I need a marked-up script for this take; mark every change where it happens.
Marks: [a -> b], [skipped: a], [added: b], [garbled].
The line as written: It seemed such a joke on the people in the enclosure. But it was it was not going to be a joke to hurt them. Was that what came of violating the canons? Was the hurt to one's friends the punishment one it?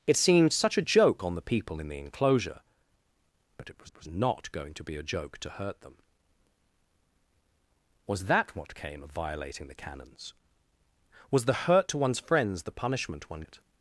It seemed such a joke on the people in the enclosure. But it was it was not going to be a joke to hurt them. Was that what came of violating the canons? Was the hurt to one's friends the punishment one it?